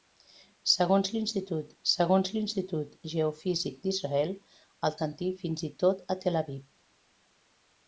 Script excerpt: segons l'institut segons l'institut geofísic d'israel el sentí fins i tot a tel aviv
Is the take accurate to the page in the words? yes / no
yes